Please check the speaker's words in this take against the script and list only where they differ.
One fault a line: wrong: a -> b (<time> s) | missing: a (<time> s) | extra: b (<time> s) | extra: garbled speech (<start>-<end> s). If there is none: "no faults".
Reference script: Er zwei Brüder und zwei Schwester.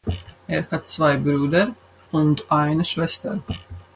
extra: hat (0.7 s)
wrong: zwei -> eine (2.5 s)